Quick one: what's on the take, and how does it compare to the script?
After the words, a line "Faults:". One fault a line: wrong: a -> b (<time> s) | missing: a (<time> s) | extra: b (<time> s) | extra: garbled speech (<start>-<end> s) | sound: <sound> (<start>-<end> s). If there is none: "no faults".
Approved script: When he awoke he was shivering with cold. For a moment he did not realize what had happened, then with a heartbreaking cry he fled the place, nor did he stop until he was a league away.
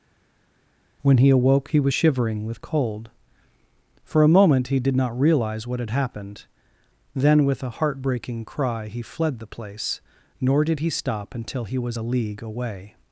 When he awoke he was shivering with cold. For a moment he did not realize what had happened, then with a heartbreaking cry he fled the place, nor did he stop until he was a league away.
Faults:
no faults